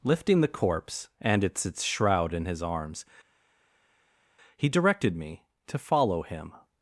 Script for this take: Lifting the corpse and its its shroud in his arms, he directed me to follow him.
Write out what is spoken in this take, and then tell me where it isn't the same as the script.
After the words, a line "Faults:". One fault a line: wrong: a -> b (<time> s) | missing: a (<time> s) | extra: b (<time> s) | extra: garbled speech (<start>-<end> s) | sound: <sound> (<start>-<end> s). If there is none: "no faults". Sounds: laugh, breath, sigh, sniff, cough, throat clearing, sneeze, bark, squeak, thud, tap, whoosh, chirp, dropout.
Lifting the corpse and its its shroud in his arms, he directed me to follow him.
Faults:
no faults